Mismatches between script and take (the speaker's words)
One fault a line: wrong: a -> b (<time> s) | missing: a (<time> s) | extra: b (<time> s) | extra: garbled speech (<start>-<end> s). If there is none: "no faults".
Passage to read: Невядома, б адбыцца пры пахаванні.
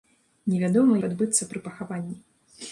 no faults